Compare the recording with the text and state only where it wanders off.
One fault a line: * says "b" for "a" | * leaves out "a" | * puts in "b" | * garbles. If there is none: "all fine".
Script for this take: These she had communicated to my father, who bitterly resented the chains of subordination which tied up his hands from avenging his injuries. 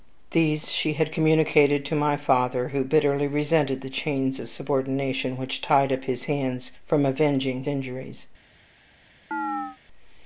* leaves out "his"